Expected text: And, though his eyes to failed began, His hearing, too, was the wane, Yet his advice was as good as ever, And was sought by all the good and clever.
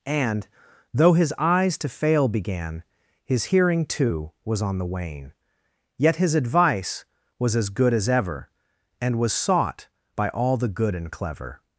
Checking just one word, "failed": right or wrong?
wrong